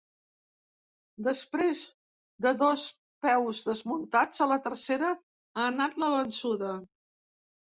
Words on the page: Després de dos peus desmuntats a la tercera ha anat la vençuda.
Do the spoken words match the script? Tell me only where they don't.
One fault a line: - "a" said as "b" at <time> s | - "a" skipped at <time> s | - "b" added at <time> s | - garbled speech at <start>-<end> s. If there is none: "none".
none